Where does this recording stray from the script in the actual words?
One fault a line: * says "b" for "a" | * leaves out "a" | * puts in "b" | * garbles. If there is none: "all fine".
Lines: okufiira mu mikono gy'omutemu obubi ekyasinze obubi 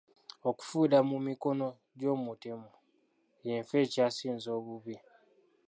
* says "y'enfa" for "obubi"